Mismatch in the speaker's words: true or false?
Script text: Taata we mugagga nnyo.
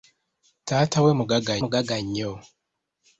true